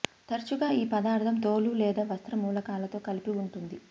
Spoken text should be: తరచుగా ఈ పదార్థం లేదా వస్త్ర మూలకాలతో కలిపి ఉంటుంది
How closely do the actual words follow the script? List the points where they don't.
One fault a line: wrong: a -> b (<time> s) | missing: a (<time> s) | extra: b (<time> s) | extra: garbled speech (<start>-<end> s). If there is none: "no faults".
extra: తోలు (1.4 s)